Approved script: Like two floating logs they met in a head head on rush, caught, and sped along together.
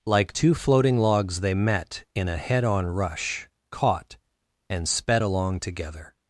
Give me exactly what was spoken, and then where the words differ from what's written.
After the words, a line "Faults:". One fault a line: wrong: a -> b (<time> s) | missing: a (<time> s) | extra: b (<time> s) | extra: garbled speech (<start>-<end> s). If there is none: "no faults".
Like two floating logs they met in a head on rush, caught, and sped along together.
Faults:
missing: head (2.6 s)